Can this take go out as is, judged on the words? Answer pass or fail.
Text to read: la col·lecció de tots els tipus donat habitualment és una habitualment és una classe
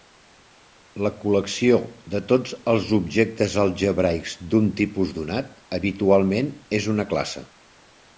fail